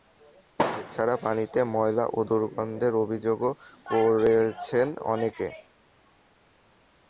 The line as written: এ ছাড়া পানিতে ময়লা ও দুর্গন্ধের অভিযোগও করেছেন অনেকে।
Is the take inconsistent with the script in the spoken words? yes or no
no